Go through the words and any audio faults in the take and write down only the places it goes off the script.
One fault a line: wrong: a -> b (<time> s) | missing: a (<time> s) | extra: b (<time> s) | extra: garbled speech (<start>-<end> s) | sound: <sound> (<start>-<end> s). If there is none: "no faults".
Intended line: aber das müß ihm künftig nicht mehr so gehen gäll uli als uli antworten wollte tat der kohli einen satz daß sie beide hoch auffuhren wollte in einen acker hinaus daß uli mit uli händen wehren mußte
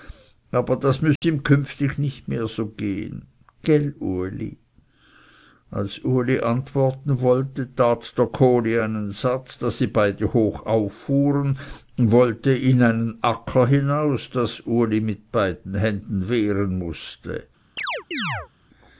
sound: dropout (1.2-1.2 s)
wrong: uli -> beiden (15.3 s)
sound: chirp (17.8-18.5 s)